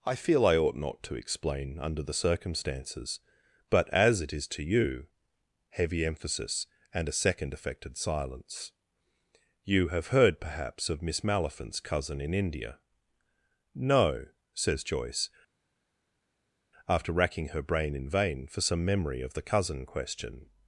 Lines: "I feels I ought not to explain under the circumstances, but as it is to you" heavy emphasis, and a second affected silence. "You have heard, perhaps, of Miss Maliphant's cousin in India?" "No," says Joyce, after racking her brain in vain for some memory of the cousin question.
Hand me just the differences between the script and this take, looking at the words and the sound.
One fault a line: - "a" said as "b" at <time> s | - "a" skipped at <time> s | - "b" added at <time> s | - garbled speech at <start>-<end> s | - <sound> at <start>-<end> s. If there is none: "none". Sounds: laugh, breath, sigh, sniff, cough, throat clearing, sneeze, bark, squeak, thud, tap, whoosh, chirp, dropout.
- "feels" said as "feel" at 0.1 s